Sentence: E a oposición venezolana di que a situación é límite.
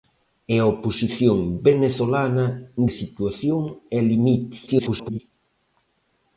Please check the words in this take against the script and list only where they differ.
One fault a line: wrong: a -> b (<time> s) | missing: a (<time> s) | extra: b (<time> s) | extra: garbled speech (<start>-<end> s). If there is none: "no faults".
missing: di que (2.5 s)
extra: garbled speech (4.7-5.2 s)